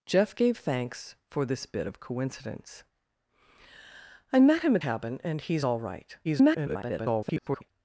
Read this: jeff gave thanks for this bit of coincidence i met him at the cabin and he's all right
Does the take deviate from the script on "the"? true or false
true